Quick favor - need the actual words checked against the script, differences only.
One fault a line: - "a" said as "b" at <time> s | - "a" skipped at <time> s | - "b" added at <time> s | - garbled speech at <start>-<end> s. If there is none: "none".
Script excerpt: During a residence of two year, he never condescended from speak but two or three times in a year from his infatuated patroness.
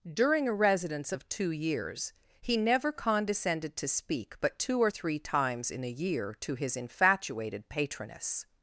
- "year" said as "years" at 1.5 s
- "from" said as "to" at 3.8 s
- "from" said as "to" at 6.3 s